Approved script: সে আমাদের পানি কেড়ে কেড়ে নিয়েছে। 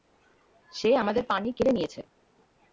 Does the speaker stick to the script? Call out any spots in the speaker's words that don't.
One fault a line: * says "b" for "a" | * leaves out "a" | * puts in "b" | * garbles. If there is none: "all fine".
* leaves out "কেড়ে"